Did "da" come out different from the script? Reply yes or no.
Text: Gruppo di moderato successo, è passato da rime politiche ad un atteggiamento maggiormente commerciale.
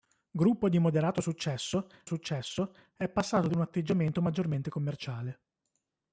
yes